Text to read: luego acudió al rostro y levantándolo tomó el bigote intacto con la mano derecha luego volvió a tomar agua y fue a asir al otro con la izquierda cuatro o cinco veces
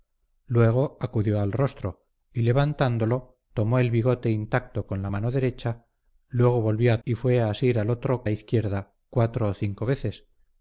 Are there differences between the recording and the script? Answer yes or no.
yes